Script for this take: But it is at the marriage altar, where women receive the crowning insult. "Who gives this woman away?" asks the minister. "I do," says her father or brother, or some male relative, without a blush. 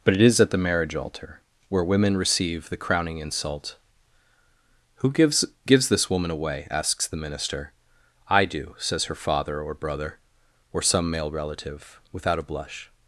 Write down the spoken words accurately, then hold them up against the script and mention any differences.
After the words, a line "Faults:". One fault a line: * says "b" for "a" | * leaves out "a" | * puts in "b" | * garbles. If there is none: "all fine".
But it is at the marriage altar, where women receive the crowning insult. "Who gives gives this woman away?" asks the minister. "I do," says her father or brother, or some male relative, without a blush.
Faults:
* puts in "gives"